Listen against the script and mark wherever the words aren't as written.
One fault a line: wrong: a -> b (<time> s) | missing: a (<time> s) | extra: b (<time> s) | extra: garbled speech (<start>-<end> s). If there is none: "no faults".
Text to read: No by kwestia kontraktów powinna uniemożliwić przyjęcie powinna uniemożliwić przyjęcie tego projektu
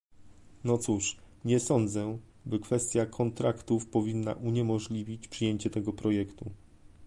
extra: cóż nie sądzę (0.8 s)
missing: powinna uniemożliwić przyjęcie (5.7 s)